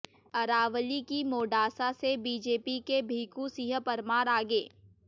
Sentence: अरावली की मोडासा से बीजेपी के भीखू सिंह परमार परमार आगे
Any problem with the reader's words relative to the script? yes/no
yes